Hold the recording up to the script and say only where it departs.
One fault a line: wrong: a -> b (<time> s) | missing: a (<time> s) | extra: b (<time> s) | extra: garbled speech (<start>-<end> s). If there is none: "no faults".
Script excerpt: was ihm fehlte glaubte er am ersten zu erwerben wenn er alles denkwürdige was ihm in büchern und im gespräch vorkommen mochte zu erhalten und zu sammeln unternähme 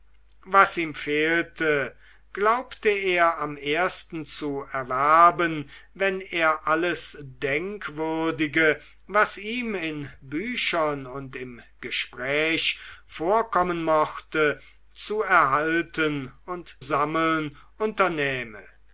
missing: zu (16.8 s)